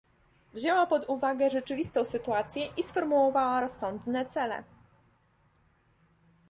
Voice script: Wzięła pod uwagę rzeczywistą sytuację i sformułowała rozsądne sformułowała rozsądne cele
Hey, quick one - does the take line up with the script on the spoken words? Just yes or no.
no